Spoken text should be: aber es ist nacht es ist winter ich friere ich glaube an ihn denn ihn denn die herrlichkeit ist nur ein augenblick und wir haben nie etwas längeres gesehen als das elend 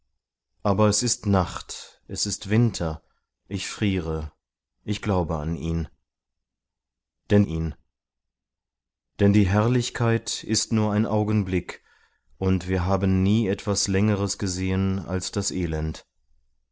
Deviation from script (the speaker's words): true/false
false